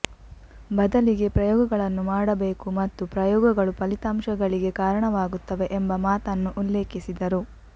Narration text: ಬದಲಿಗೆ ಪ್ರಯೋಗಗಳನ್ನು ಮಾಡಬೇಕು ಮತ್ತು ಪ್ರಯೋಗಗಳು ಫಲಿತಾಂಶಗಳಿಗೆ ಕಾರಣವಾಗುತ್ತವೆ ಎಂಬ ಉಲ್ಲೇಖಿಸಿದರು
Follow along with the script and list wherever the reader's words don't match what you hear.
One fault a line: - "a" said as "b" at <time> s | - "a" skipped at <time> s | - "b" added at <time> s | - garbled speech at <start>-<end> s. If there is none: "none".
- "ಮಾತನ್ನು" added at 6.1 s